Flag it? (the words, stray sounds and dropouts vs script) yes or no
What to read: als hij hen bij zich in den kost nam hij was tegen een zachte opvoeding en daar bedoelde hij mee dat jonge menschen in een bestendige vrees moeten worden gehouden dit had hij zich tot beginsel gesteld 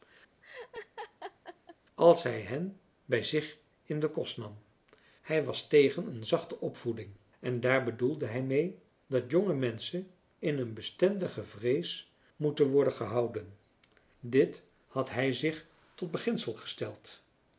yes